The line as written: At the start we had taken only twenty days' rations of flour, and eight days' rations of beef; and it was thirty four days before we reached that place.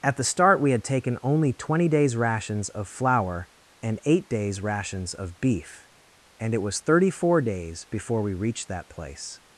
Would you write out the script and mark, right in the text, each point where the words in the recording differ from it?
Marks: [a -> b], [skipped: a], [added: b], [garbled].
At the start we had taken only twenty days' rations of flour, and eight days' rations of beef; and it was thirty four days before we reached that place.